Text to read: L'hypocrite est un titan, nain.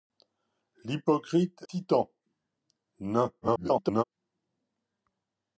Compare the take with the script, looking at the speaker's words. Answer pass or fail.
fail